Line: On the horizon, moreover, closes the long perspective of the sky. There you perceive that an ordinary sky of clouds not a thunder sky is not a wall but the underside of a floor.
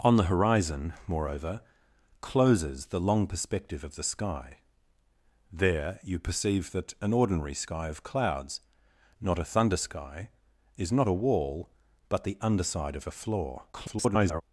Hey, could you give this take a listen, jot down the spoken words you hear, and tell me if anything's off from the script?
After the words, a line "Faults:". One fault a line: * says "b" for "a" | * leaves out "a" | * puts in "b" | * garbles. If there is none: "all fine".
On the horizon, moreover, closes the long perspective of the sky. There you perceive that an ordinary sky of clouds not a thunder sky is not a wall but the underside of a floor. [garbled]
Faults:
* garbles